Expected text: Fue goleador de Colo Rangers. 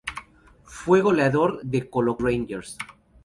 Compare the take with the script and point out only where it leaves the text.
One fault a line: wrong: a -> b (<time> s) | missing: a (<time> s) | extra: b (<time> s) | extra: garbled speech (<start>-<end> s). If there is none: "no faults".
no faults